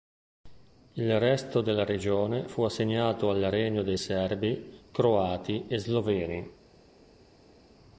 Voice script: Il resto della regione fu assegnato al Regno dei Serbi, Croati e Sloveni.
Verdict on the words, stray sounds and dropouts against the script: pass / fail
pass